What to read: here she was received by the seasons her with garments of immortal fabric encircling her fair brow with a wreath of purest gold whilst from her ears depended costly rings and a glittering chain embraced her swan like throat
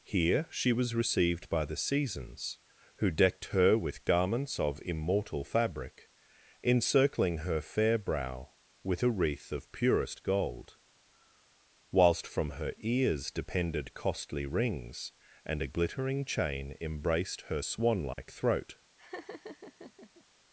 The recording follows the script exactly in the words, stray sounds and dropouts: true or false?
false